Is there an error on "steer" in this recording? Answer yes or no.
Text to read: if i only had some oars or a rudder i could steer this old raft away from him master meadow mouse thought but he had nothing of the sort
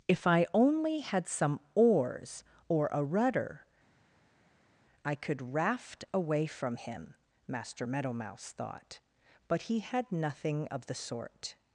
yes